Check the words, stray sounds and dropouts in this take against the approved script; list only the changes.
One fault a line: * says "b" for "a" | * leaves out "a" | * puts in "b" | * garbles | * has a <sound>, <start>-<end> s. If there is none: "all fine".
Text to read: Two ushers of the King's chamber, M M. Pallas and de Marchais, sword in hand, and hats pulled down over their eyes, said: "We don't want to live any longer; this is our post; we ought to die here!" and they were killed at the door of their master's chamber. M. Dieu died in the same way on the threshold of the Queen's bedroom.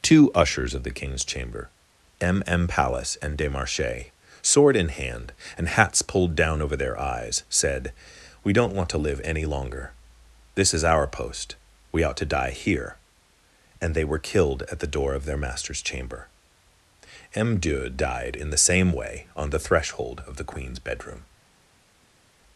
all fine